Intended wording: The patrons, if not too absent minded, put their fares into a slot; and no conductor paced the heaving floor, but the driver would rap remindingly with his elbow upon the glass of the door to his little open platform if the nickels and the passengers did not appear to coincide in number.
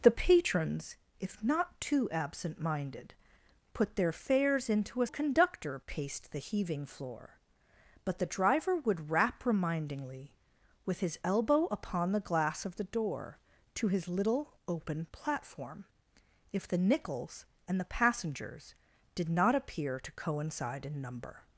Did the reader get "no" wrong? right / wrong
wrong